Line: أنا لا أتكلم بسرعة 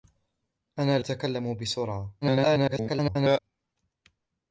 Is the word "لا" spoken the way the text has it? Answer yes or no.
no